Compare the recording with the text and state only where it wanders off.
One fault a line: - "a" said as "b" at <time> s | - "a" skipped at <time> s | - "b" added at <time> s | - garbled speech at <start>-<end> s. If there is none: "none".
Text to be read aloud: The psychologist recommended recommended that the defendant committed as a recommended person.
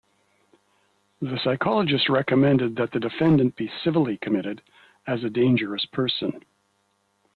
- "recommended" skipped at 2.8 s
- "be civilly" added at 3.6 s
- "recommended" said as "dangerous" at 5.3 s